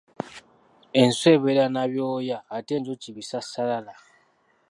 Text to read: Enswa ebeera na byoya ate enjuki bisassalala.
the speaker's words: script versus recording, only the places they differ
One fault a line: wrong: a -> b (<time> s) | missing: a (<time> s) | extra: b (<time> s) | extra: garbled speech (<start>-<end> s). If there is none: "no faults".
no faults